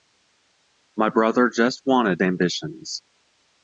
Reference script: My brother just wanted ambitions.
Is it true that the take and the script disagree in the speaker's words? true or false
false